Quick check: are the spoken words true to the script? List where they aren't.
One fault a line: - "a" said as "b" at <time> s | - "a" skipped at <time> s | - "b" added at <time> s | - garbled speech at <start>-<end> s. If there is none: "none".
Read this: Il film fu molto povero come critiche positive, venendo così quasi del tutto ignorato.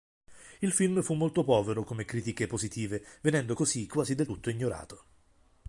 none